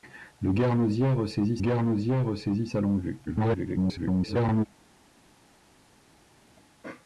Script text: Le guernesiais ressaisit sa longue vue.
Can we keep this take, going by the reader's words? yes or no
no